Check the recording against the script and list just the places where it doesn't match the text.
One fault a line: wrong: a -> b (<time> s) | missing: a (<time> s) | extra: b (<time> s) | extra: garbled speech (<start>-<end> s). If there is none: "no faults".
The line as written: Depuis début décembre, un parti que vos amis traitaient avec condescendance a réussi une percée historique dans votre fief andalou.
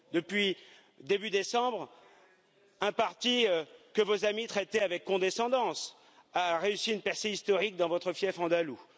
no faults